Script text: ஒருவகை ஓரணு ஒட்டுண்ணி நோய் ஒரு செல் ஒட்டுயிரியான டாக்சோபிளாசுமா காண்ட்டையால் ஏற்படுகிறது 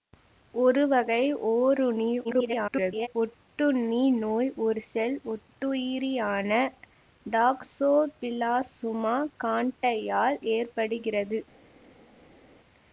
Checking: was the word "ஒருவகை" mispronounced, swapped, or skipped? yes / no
no